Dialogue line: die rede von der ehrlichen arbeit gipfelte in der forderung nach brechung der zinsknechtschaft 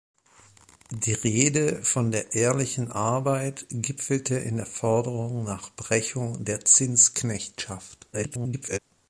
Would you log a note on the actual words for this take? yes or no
yes